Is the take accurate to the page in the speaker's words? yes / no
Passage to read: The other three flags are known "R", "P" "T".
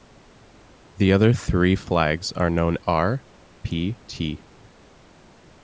yes